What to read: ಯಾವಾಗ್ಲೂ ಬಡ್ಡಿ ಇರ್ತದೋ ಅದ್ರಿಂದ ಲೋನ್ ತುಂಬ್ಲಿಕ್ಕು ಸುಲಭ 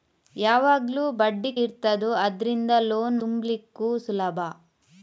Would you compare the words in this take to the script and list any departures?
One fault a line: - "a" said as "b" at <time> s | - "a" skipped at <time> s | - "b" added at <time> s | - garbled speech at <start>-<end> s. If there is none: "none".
none